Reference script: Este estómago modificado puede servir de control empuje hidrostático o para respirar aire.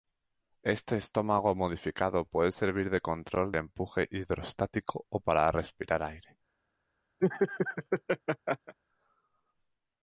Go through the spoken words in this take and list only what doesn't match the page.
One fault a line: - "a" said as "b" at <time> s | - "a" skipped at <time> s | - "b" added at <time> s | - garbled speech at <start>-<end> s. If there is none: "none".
none